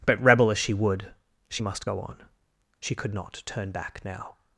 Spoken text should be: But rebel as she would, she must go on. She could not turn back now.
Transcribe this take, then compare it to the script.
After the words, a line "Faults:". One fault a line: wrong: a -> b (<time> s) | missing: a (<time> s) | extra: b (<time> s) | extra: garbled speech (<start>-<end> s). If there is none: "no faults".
But rebel as she would, she must go on. She could not turn back now.
Faults:
no faults